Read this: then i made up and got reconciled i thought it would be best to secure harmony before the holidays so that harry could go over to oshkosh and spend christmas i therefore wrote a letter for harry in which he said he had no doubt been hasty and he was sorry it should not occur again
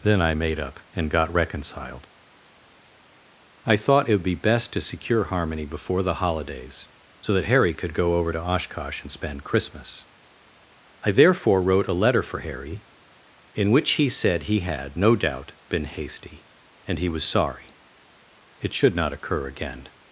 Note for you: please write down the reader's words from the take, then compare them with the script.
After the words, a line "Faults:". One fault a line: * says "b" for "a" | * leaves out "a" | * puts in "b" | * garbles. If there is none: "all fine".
then i made up and got reconciled i thought it would be best to secure harmony before the holidays so that harry could go over to oshkosh and spend christmas i therefore wrote a letter for harry in which he said he had no doubt been hasty and he was sorry it should not occur again
Faults:
all fine